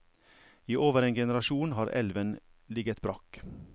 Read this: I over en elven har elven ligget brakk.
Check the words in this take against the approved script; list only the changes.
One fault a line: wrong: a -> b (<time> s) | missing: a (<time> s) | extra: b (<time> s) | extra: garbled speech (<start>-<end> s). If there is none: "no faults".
wrong: elven -> generasjon (1.1 s)